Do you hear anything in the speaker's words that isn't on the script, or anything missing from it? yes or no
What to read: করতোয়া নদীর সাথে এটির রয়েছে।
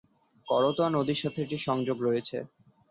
yes